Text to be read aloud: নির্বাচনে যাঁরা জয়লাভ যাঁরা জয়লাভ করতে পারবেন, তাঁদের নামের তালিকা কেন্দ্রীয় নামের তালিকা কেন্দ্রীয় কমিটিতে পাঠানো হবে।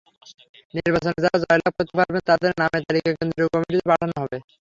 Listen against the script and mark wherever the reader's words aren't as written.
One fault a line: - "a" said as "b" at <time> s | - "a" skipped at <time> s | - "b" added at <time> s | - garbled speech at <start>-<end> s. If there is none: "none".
- "যাঁরা জয়লাভ" skipped at 1.7 s
- "নামের তালিকা কেন্দ্রীয়" skipped at 3.5 s